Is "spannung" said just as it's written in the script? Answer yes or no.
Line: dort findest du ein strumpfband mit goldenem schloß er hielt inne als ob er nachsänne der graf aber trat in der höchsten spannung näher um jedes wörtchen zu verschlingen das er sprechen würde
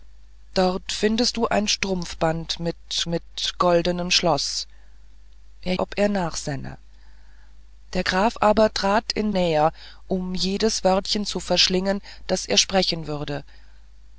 no